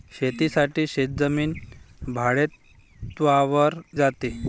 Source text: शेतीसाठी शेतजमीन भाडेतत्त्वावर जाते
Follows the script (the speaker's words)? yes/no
yes